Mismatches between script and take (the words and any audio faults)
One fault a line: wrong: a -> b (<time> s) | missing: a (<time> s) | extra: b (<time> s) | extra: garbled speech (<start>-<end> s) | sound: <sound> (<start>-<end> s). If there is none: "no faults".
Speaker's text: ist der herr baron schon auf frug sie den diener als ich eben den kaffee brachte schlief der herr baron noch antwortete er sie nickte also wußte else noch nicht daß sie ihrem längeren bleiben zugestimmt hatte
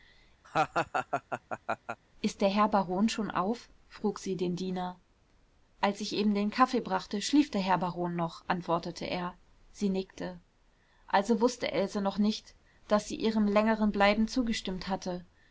sound: laugh (0.4-2.0 s)